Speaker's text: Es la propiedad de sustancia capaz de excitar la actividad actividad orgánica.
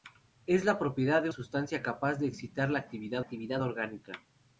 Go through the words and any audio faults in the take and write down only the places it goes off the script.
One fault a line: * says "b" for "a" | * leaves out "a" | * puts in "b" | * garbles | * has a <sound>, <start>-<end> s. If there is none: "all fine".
all fine